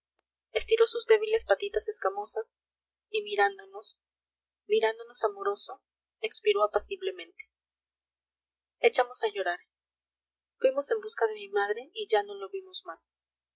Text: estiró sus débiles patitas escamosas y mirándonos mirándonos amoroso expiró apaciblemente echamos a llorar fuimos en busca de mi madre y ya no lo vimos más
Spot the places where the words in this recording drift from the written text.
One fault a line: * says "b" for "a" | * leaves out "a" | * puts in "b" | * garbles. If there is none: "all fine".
all fine